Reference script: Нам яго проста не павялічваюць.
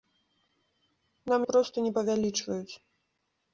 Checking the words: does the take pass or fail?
fail